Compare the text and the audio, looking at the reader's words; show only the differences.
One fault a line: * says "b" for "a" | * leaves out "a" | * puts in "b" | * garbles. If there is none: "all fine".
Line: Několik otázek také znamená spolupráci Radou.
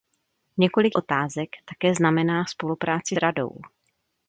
all fine